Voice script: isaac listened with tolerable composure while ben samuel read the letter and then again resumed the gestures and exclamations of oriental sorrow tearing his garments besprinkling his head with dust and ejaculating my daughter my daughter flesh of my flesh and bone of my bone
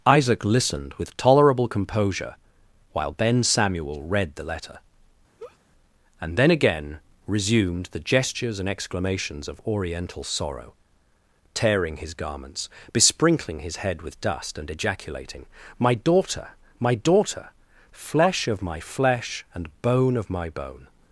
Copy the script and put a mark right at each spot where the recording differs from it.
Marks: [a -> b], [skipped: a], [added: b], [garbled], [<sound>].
isaac listened with tolerable composure while ben samuel read the letter [laugh] and then again resumed the gestures and exclamations of oriental sorrow tearing his garments besprinkling his head with dust and ejaculating my daughter my daughter flesh of my flesh and bone of my bone